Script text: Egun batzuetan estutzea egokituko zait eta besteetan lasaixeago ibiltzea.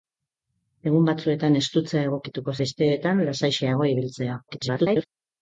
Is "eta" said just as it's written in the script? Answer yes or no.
no